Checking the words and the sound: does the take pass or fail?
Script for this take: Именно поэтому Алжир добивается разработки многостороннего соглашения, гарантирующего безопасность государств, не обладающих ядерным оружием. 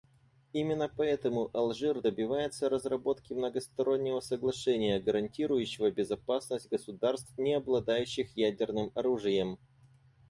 pass